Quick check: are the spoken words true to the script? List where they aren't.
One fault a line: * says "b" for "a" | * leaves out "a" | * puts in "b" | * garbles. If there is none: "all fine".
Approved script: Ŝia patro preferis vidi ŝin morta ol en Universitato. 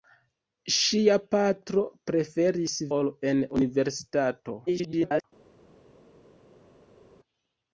* leaves out "vidi ŝin morta"
* garbles